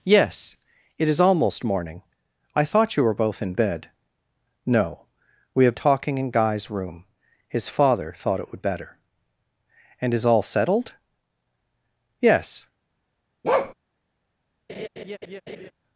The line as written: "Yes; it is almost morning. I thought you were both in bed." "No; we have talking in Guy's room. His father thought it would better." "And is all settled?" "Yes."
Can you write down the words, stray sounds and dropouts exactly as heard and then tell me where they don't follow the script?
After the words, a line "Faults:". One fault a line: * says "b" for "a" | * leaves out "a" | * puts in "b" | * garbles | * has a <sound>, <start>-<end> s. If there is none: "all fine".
"Yes; it is almost morning. I thought you were both in bed." "No; we have talking in Guy's room. His father thought it would better." "And is all settled?" "Yes."
Faults:
* has a bark, 13.4-13.7 s
* has a laugh, 14.7-15.7 s